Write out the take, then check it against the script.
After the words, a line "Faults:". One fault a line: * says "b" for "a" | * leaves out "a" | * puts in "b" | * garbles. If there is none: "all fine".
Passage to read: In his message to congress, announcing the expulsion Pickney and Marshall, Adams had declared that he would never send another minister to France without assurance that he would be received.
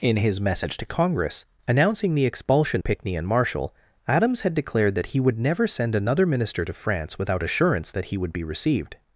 In his message to congress, announcing the expulsion Pickney and Marshall, Adams had declared that he would never send another minister to France without assurance that he would be received.
Faults:
all fine